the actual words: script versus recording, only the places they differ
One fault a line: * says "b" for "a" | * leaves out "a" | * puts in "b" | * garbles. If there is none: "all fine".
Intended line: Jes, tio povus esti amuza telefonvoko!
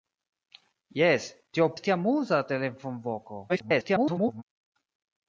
* leaves out "povus"
* garbles